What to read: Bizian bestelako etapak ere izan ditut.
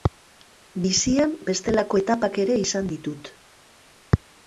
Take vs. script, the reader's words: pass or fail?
pass